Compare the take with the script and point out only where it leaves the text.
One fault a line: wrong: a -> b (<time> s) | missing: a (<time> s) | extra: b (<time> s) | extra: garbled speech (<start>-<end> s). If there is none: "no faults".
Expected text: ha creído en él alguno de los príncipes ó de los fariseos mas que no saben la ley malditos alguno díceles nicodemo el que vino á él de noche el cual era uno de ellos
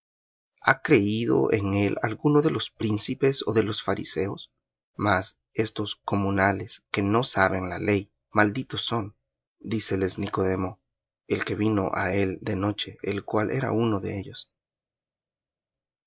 extra: estos comunales (5.5 s)
wrong: alguno -> son (8.8 s)